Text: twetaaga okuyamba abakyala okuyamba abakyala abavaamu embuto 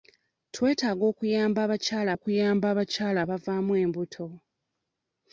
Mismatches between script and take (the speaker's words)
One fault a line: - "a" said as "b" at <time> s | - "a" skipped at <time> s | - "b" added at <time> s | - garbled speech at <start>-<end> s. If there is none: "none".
none